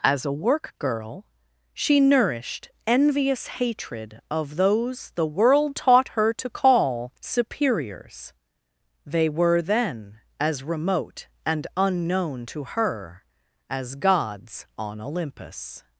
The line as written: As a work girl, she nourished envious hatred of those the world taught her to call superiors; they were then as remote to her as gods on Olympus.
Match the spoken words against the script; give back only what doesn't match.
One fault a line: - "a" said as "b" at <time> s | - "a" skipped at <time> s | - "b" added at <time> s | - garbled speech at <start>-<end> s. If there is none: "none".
- "and unknown" added at 11.4 s